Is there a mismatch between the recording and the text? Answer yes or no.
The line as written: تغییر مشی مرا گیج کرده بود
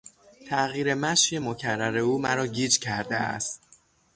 yes